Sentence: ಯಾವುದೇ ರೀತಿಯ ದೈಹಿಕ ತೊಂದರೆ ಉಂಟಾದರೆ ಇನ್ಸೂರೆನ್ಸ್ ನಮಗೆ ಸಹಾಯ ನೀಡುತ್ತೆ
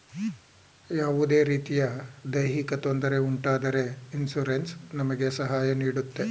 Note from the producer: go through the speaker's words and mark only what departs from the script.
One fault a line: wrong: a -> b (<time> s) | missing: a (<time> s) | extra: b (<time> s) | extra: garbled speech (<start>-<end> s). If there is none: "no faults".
no faults